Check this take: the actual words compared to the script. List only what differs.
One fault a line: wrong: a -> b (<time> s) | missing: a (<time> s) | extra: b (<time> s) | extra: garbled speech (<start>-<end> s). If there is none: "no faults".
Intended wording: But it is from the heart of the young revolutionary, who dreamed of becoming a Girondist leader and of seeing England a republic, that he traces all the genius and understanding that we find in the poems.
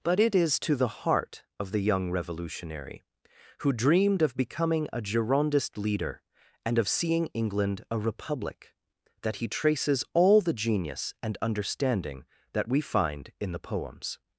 wrong: from -> to (0.6 s)